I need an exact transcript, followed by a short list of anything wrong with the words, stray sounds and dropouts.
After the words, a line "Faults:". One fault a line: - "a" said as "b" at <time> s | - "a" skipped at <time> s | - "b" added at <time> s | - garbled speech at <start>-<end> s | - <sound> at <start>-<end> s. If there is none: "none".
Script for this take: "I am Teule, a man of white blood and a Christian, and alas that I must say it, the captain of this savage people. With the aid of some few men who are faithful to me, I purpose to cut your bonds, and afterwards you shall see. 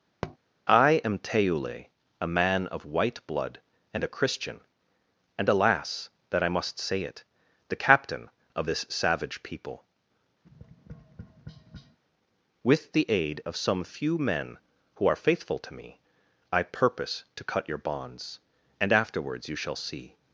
"I am Teule, a man of white blood and a Christian, and alas that I must say it, the captain of this savage people. With the aid of some few men who are faithful to me, I purpose to cut your bonds, and afterwards you shall see.
Faults:
- tap at 0.2-0.4 s
- tap at 10.4-12.0 s